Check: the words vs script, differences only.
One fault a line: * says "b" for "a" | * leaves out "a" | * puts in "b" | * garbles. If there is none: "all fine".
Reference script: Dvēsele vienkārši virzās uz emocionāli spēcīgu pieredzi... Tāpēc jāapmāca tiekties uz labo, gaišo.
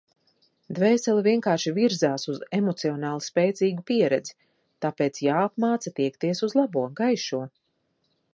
all fine